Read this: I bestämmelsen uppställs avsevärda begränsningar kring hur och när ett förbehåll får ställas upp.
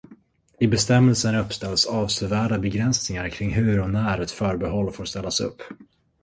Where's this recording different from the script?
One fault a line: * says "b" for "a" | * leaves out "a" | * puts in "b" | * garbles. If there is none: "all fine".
all fine